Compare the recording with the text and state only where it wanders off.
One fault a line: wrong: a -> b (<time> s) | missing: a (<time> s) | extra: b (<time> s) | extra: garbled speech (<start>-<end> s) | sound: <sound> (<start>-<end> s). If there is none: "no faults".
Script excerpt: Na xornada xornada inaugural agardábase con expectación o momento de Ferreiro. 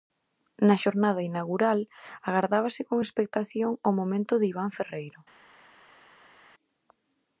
missing: xornada (1.2 s)
extra: Iván (4.5 s)